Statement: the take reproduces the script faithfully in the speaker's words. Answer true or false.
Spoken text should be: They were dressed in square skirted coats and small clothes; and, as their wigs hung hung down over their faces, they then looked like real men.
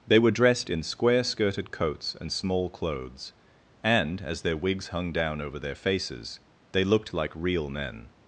false